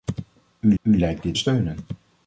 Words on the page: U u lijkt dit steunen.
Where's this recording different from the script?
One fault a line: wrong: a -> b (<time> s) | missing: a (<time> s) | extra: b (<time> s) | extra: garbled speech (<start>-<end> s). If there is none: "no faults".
no faults